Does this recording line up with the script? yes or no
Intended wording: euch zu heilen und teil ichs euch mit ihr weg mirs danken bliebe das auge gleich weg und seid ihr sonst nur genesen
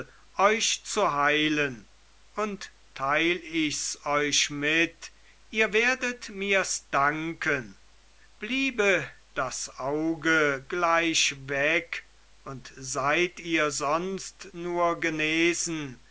no